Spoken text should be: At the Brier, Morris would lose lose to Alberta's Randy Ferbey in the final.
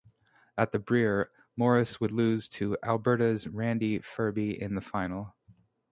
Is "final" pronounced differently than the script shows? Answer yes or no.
no